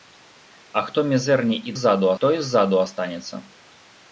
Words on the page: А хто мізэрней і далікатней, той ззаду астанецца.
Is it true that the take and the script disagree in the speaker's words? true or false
true